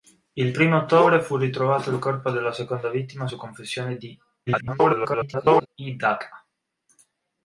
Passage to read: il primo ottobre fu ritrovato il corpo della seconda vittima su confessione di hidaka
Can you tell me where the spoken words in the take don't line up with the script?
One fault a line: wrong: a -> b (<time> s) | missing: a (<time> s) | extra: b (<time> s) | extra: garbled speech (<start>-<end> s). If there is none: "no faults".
extra: garbled speech (4.5-5.7 s)